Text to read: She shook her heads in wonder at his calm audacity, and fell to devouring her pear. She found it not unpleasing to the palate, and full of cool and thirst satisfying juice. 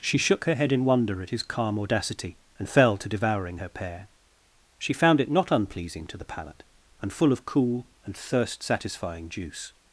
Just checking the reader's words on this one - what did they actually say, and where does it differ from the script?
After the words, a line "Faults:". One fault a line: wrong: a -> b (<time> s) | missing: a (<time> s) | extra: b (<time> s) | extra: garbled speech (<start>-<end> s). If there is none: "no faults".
She shook her head in wonder at his calm audacity, and fell to devouring her pear. She found it not unpleasing to the palate, and full of cool and thirst satisfying juice.
Faults:
wrong: heads -> head (0.6 s)